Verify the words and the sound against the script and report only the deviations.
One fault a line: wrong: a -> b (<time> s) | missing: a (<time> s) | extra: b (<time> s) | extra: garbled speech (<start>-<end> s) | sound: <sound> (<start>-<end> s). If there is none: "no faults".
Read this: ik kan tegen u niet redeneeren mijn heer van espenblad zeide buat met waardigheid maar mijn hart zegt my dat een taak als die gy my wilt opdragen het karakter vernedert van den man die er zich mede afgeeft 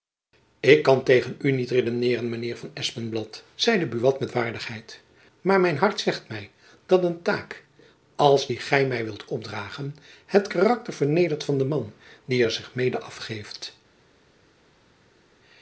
no faults